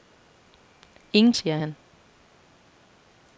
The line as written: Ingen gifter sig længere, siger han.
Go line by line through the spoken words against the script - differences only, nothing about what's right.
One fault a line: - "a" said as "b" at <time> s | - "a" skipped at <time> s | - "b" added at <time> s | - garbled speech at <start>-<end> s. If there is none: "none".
- "gifter sig længere" skipped at 1.3 s